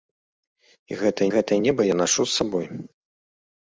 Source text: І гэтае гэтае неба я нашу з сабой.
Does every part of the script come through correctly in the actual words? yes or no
yes